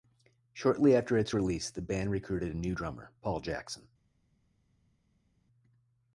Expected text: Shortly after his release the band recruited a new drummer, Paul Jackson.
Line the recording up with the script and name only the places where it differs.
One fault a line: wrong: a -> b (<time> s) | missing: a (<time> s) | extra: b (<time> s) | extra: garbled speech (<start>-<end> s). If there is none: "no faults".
wrong: his -> its (1.1 s)